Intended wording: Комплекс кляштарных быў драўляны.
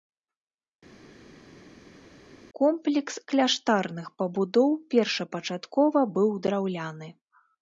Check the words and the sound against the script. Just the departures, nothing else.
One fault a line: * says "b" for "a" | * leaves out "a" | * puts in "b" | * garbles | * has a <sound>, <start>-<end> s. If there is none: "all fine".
* puts in "пабудоў першапачаткова"